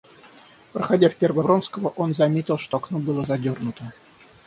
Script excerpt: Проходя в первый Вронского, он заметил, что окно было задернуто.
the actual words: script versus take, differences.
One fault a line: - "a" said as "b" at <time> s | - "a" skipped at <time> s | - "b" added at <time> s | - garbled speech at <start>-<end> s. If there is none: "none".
none